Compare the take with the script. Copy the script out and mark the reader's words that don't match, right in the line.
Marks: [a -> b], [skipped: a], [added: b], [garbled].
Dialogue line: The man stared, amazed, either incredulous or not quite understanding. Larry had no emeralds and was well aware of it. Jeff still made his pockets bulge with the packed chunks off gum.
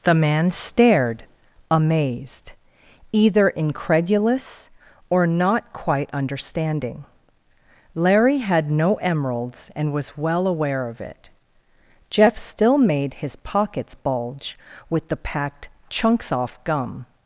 The man stared, amazed, either incredulous or not quite understanding. Larry had no emeralds and was well aware of it. Jeff still made his pockets bulge with the packed chunks off gum.